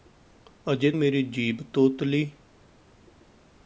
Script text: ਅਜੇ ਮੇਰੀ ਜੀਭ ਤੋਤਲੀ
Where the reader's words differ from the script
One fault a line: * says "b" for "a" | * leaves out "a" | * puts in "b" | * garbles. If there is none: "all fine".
all fine